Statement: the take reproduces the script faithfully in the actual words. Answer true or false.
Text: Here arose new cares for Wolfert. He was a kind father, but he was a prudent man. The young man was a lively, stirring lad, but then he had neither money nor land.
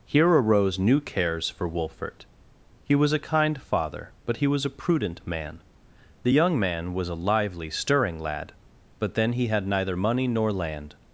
true